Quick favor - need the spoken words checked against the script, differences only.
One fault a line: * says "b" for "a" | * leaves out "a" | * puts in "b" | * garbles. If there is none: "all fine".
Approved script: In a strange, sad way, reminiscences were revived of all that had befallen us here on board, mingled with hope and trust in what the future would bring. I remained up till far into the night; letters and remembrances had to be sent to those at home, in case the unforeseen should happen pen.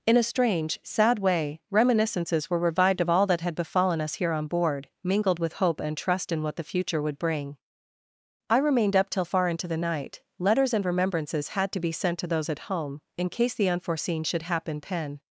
all fine